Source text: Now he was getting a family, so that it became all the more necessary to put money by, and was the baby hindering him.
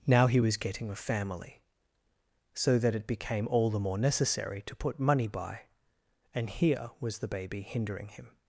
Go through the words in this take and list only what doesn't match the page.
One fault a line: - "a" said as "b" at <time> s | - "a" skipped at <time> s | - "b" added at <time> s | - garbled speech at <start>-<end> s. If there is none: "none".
- "here" added at 6.5 s